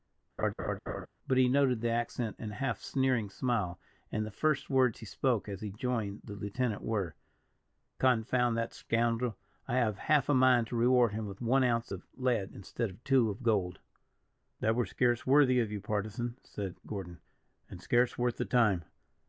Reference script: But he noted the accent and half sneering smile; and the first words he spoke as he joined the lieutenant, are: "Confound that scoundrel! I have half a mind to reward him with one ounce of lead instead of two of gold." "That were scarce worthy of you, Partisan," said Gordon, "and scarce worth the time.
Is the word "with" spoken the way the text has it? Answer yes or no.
yes